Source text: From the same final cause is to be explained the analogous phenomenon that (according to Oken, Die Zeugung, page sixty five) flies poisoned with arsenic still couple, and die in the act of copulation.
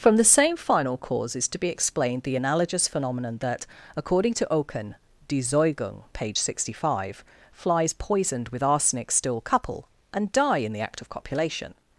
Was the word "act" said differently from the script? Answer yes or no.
no